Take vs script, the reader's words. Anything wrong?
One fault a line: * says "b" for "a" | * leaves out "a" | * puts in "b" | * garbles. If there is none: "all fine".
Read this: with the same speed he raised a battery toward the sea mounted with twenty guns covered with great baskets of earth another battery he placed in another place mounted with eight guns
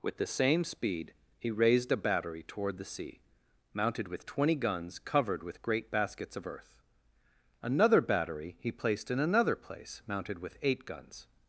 all fine